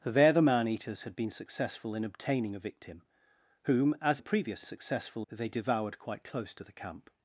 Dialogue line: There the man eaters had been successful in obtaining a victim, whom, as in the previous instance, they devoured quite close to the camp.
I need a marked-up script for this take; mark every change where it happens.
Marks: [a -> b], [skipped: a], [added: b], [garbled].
There the man eaters had been successful in obtaining a victim, whom, as [skipped: in] the previous [instance, -> successful] they devoured quite close to the camp.